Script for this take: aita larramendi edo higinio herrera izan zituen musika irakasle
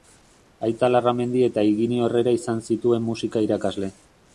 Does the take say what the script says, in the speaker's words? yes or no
no